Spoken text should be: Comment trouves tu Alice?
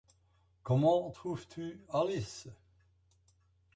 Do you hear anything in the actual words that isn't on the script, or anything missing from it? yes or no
no